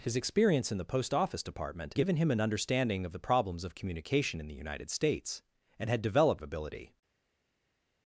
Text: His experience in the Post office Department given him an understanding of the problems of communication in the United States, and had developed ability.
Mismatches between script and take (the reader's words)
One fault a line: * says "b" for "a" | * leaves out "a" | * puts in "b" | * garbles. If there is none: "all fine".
all fine